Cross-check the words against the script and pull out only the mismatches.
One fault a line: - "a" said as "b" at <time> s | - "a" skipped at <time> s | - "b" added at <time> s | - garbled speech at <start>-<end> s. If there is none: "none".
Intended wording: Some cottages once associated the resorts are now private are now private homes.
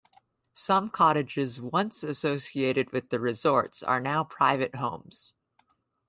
- "with" added at 2.9 s
- "are now private" skipped at 4.7 s